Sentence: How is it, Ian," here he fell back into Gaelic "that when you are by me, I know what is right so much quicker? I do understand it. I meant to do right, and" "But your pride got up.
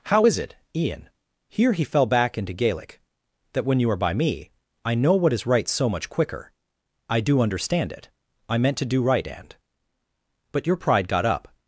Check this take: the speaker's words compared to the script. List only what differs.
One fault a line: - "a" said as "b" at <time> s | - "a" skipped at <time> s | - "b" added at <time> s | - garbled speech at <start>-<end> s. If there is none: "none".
none